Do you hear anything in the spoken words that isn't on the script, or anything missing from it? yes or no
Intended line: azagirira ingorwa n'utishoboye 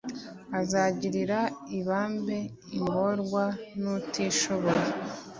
yes